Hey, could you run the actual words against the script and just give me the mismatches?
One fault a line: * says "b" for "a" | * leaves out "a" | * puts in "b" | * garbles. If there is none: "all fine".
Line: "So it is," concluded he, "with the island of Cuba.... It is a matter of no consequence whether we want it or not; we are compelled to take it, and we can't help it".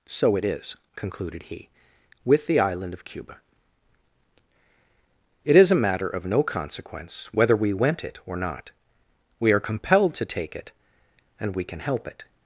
* says "went" for "want"
* says "can" for "can't"